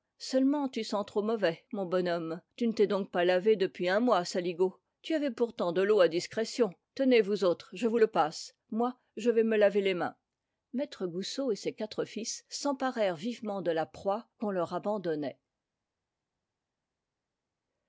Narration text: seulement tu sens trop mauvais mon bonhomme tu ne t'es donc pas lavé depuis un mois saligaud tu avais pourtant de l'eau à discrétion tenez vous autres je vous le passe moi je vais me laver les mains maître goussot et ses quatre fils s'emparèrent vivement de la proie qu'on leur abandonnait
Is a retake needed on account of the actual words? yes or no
no